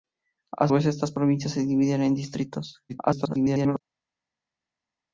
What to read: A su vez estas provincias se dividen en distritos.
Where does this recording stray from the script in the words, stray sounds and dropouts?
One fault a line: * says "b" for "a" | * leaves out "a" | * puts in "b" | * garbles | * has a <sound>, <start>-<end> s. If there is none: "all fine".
* leaves out "su"
* garbles